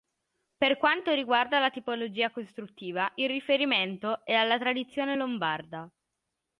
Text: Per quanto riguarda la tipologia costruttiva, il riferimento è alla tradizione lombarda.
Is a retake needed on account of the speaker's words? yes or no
no